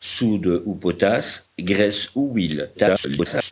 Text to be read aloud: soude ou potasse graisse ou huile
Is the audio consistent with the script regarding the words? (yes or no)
no